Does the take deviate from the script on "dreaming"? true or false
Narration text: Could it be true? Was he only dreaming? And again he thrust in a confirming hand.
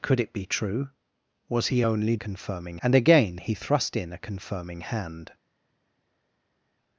true